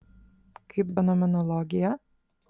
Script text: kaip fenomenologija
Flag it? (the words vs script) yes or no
no